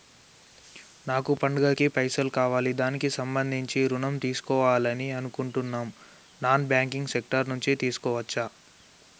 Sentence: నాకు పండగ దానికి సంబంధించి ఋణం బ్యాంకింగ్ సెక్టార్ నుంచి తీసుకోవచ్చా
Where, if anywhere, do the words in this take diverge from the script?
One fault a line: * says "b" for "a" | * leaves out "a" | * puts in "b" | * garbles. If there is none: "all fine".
* puts in "కి పైసలు కావాలి"
* puts in "తీసుకోవాలని అనుకుంటున్నం నాన్"